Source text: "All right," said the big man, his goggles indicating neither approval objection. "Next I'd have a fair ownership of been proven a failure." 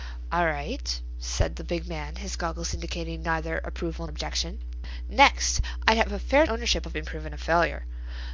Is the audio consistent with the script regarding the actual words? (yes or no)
yes